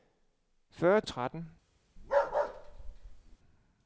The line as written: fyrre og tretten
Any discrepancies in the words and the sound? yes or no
yes